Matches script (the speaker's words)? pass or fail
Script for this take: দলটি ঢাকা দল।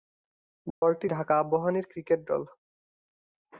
fail